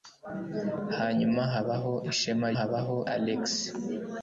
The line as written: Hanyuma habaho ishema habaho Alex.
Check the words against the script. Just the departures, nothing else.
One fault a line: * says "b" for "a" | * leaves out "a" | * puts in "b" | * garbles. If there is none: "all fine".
all fine